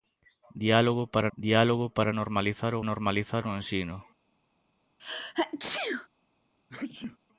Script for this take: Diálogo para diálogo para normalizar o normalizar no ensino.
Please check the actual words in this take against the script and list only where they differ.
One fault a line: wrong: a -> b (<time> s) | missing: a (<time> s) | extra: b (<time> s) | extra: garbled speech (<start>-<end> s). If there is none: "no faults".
no faults